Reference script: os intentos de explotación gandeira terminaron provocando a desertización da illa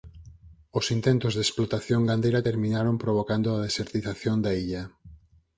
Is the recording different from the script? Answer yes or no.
no